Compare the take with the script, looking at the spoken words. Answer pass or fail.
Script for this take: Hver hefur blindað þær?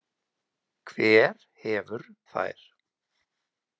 fail